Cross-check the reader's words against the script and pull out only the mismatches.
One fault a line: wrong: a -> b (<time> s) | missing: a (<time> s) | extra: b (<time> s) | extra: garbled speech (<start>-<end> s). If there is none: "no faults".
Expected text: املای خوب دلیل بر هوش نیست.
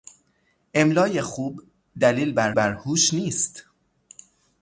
extra: بر (2.5 s)